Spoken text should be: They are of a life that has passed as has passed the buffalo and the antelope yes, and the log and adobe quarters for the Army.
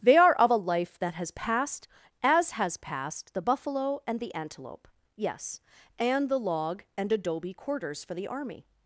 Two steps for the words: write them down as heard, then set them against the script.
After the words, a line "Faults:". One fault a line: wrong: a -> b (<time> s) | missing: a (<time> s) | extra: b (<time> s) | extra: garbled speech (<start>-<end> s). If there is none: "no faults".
They are of a life that has passed as has passed the buffalo and the antelope yes, and the log and adobe quarters for the Army.
Faults:
no faults